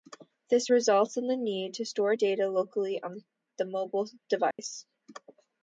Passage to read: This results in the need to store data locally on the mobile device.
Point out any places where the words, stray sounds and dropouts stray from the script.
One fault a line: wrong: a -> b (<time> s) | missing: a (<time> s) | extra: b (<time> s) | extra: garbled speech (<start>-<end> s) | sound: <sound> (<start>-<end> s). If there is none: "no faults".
sound: dropout (4.5-4.6 s)